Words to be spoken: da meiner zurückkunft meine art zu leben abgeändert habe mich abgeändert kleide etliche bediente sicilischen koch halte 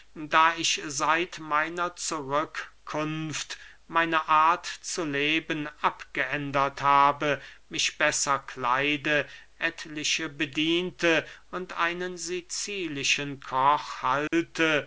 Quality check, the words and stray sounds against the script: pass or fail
fail